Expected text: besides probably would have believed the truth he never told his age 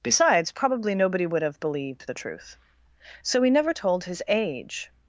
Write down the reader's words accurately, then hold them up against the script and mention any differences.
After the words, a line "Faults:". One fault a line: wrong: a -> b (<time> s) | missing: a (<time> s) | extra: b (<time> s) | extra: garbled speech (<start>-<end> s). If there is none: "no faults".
besides probably nobody would have believed the truth so he never told his age
Faults:
extra: nobody (0.9 s)
extra: so (3.2 s)